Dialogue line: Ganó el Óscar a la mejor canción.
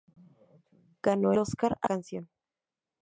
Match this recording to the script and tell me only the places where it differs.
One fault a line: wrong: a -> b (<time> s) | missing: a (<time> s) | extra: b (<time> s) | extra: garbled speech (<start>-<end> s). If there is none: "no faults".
missing: el (1.3 s)
missing: la mejor (1.9 s)